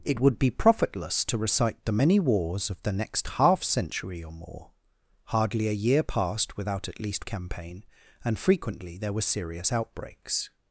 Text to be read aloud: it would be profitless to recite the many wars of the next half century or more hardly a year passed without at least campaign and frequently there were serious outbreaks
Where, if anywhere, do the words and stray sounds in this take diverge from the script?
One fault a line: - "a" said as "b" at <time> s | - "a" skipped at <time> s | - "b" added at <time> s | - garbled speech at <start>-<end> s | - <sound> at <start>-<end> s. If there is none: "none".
none